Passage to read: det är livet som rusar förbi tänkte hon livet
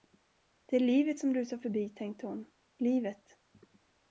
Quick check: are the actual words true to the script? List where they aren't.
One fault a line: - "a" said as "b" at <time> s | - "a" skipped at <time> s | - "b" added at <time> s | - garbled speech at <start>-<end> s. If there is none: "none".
none